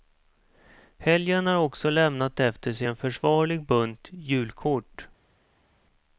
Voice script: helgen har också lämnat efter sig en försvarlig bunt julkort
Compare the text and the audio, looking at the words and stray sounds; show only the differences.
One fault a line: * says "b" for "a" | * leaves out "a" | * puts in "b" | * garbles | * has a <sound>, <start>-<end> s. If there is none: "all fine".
all fine